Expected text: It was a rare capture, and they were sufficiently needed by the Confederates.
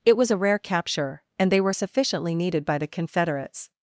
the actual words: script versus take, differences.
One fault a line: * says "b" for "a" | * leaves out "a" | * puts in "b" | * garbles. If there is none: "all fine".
all fine